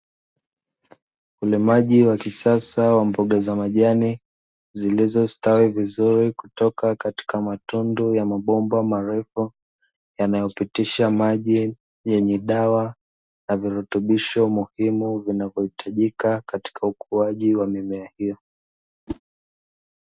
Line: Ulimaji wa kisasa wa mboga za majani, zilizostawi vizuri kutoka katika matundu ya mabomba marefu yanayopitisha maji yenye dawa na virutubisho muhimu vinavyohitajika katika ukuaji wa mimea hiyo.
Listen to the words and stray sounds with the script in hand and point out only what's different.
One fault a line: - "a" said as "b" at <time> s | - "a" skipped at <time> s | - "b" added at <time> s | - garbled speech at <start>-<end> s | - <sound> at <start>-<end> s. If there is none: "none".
- whoosh at 19.1-19.2 s